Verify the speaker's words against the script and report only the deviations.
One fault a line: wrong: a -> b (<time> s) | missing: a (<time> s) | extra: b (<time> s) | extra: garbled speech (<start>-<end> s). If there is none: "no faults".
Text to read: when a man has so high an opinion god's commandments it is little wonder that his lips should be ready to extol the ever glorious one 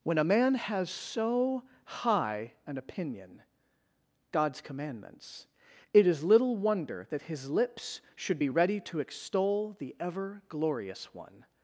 no faults